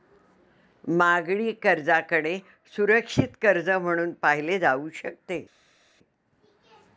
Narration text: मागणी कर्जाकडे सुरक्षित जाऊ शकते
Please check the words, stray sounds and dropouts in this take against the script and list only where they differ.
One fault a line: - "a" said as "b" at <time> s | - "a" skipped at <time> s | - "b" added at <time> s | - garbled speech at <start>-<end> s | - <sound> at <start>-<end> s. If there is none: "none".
- "कर्ज म्हणून पाहिले" added at 3.4 s